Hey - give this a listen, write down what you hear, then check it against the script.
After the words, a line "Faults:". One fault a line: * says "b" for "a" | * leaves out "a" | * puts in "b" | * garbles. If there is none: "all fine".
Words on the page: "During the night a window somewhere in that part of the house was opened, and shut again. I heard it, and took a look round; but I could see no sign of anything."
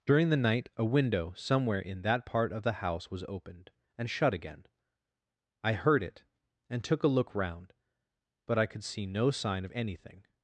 "During the night a window somewhere in that part of the house was opened, and shut again. I heard it, and took a look round; but I could see no sign of anything."
Faults:
all fine